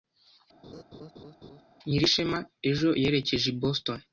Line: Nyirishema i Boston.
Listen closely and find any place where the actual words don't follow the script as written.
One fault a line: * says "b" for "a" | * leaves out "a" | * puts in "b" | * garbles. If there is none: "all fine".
* puts in "ejo yerekeje"